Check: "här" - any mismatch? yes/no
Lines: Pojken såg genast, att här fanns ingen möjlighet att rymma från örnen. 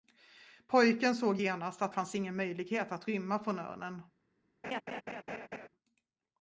yes